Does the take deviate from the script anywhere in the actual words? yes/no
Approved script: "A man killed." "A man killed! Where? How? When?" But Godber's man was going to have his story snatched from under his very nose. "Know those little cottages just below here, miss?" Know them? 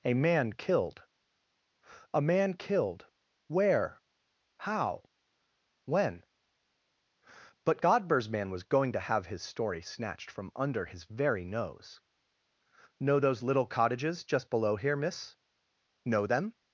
no